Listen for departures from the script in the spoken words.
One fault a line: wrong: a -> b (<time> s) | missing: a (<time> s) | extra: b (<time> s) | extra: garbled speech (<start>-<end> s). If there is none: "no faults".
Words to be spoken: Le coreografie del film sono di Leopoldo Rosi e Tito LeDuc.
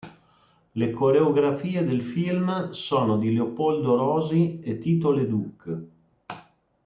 no faults